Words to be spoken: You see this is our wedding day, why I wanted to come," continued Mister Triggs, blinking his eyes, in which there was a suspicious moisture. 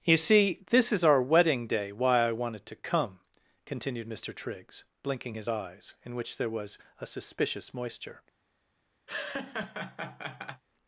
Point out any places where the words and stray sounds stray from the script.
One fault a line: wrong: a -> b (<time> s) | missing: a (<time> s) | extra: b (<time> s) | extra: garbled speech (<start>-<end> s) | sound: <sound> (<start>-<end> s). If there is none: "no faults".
sound: laugh (9.1-10.6 s)